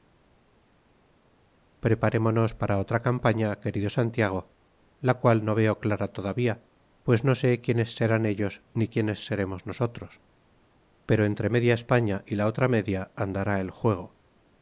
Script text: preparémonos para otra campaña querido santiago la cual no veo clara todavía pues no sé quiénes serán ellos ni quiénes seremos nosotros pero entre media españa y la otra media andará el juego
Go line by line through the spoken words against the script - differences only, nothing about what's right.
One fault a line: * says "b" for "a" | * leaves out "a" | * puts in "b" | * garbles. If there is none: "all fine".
all fine